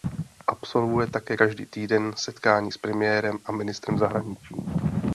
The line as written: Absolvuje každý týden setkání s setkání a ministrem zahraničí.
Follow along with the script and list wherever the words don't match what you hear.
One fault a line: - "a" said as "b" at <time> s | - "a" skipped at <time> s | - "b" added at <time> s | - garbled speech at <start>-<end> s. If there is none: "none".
- "také" added at 1.1 s
- "setkání" said as "premiérem" at 2.8 s